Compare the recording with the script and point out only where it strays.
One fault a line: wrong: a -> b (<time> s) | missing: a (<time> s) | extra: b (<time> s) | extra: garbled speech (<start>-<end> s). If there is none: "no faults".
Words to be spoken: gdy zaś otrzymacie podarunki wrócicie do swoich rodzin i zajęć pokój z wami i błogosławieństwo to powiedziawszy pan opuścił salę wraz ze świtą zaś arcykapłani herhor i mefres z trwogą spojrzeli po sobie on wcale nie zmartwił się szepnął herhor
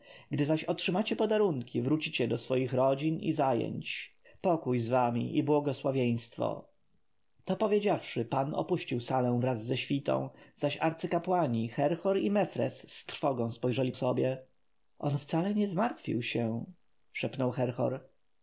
missing: po (13.9 s)